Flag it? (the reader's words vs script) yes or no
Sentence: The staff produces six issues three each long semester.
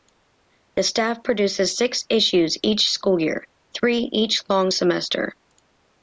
yes